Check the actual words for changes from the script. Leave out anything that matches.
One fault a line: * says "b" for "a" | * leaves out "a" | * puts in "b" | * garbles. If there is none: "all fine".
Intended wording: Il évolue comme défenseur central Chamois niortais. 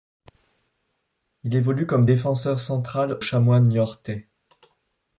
all fine